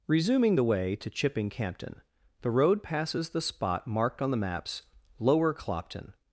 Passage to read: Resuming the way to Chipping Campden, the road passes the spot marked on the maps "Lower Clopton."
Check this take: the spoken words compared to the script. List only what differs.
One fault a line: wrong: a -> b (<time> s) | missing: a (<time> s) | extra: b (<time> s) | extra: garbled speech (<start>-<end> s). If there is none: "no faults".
no faults